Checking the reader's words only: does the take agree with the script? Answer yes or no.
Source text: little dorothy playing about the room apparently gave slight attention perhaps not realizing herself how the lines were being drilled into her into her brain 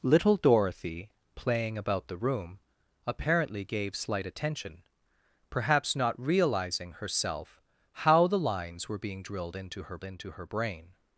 yes